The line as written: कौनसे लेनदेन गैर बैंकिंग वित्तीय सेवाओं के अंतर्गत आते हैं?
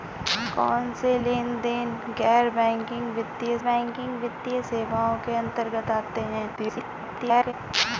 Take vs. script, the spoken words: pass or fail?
fail